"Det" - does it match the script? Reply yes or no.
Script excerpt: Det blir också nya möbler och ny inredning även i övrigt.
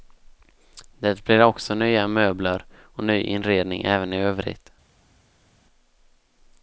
yes